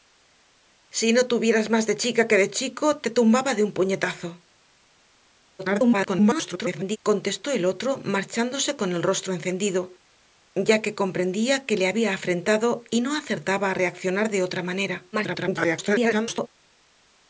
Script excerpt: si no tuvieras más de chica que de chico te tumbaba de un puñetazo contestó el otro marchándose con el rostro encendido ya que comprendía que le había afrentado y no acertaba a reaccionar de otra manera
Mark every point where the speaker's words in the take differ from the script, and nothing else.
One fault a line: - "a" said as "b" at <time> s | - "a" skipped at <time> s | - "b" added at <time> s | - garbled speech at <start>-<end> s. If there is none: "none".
- garbled speech at 5.6-7.0 s
- garbled speech at 15.1-16.5 s